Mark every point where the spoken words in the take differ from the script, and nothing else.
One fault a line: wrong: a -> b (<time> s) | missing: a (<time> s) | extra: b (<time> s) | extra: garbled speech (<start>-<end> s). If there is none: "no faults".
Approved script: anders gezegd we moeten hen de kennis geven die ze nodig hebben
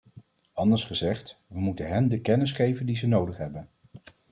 no faults